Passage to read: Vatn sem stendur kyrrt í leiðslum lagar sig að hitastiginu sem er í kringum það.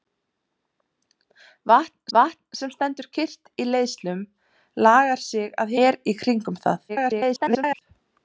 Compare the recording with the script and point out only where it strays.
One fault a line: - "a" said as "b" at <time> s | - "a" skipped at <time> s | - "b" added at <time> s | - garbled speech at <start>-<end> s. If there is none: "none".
- "vatn" added at 2.2 s
- "hitastiginu sem" skipped at 5.7 s
- garbled speech at 6.9-7.8 s